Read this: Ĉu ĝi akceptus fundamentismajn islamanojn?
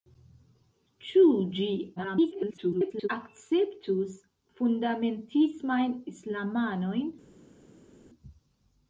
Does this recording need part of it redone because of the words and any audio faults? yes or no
yes